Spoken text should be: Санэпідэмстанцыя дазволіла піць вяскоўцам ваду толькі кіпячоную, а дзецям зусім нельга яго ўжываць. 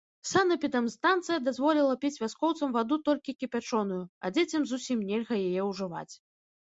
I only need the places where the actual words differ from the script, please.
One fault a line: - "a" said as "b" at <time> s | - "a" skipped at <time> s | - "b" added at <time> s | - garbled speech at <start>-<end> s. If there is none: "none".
- "яго" said as "яе" at 5.5 s